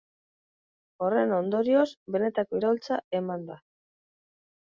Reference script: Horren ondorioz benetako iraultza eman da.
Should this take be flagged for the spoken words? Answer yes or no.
no